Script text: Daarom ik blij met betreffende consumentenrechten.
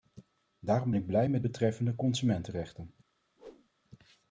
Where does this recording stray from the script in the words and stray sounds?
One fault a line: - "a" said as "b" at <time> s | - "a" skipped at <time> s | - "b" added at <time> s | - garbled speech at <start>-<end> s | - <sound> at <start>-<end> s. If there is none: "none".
- whoosh at 3.4-3.7 s